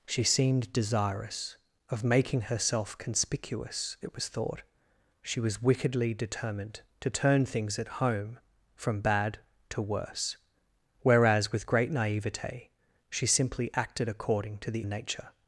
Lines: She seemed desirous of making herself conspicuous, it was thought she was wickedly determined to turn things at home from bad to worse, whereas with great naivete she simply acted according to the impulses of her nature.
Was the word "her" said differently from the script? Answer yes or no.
yes